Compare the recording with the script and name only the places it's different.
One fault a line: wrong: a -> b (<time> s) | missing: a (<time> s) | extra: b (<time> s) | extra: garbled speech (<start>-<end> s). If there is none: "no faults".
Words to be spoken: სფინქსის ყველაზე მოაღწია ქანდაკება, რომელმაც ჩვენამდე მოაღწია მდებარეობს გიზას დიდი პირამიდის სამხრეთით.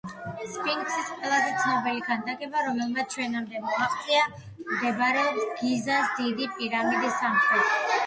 wrong: მოაღწია -> ცნობილი (1.6 s)